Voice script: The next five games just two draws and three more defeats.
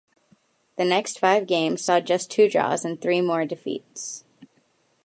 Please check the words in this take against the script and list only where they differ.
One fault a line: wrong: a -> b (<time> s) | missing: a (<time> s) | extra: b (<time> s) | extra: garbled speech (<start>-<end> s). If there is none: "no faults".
extra: saw (1.8 s)